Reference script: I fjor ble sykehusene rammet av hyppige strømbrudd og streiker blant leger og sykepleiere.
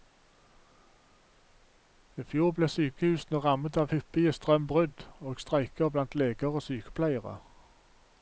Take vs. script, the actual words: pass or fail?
pass